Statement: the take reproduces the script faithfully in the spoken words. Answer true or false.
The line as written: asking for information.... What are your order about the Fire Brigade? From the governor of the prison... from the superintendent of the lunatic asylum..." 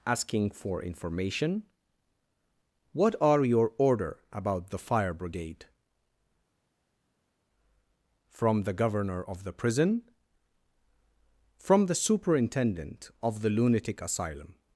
true